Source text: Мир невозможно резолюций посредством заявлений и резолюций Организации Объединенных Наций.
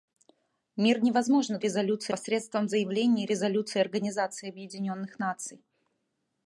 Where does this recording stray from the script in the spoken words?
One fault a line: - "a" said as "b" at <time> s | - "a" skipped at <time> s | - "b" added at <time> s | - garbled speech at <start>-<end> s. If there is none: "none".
none